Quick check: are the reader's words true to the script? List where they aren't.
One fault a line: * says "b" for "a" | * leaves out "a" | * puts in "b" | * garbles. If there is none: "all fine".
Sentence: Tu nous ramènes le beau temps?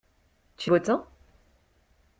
* leaves out "nous ramènes le"